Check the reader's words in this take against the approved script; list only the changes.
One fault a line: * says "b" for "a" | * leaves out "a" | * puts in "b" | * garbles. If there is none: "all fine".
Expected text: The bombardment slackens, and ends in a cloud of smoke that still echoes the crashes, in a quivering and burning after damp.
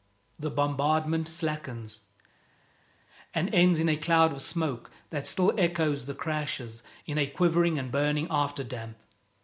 all fine